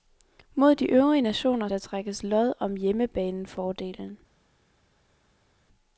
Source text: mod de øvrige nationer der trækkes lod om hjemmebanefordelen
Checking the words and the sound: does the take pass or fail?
pass